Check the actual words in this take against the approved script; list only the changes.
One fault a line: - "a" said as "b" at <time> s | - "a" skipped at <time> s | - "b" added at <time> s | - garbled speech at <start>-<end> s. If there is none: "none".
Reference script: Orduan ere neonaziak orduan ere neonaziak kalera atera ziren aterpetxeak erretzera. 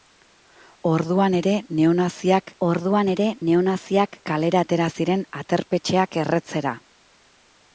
none